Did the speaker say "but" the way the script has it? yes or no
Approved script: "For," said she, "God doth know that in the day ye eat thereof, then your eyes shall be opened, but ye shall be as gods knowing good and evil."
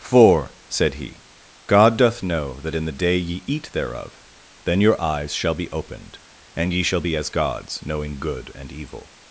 no